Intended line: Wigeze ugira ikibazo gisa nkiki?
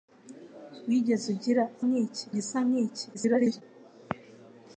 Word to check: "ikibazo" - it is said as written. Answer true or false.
false